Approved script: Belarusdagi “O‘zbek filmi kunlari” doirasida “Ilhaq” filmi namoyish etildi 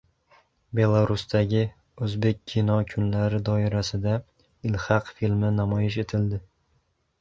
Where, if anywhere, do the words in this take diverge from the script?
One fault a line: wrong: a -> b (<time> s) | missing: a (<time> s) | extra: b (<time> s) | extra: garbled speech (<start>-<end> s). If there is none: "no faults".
wrong: filmi -> kino (2.5 s)